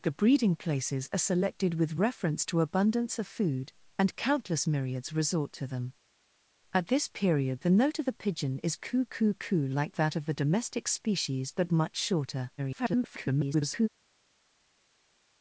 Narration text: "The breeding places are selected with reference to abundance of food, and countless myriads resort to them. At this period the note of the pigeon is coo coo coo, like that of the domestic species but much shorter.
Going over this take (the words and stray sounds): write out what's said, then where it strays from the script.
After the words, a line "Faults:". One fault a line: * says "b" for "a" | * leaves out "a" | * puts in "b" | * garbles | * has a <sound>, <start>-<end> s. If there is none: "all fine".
"The breeding places are selected with reference to abundance of food, and countless myriads resort to them. At this period the note of the pigeon is coo coo coo, like that of the domestic species but much shorter. [garbled]
Faults:
* garbles